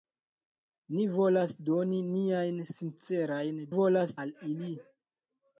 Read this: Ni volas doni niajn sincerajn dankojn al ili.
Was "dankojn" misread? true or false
true